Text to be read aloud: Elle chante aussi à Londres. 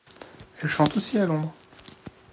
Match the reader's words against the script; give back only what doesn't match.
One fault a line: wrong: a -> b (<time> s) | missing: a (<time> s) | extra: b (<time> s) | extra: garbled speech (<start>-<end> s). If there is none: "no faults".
no faults